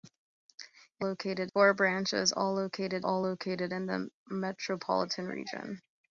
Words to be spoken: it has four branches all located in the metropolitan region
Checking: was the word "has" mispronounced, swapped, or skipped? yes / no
yes